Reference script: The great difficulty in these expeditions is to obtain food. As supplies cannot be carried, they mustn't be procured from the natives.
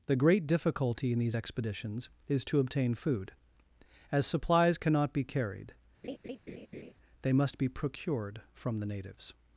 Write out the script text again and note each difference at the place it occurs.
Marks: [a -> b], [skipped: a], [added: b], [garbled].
The great difficulty in these expeditions is to obtain food. As supplies cannot be carried, they [mustn't -> must] be procured from the natives.